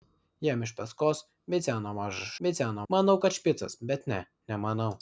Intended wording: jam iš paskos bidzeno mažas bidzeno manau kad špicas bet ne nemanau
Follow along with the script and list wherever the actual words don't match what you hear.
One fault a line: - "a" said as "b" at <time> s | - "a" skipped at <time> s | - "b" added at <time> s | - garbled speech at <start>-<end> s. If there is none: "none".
none